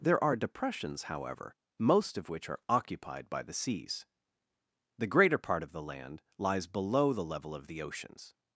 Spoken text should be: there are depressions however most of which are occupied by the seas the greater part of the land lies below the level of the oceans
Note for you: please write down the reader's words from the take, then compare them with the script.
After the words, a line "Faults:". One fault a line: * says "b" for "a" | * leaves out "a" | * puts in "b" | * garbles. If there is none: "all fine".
there are depressions however most of which are occupied by the seas the greater part of the land lies below the level of the oceans
Faults:
all fine